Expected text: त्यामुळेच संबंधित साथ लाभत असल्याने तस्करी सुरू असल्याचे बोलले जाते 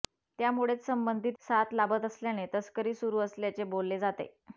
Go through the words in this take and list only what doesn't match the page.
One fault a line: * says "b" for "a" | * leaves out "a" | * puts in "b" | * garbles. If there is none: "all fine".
all fine